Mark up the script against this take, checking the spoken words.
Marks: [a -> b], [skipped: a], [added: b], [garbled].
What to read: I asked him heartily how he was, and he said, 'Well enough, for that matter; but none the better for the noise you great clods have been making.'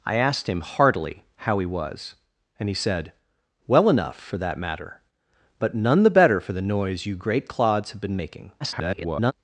I asked him heartily how he was, and he said, 'Well enough, for that matter; but none the better for the noise you great clods have been making.' [garbled]